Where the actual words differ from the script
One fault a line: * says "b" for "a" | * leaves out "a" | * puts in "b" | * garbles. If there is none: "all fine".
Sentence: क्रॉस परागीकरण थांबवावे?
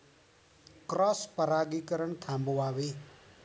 all fine